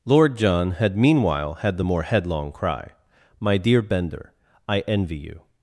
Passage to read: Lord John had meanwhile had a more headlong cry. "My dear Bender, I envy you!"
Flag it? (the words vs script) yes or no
yes